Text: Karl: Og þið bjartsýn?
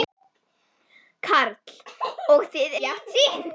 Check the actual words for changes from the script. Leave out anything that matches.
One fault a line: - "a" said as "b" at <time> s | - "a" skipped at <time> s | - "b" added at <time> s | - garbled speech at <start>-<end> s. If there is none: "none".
none